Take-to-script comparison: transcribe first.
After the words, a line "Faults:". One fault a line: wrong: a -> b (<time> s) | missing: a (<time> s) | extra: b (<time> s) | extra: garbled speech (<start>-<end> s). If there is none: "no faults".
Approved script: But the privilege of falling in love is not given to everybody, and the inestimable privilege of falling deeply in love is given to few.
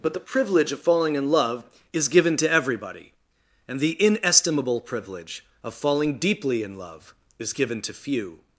But the privilege of falling in love is given to everybody, and the inestimable privilege of falling deeply in love is given to few.
Faults:
missing: not (2.1 s)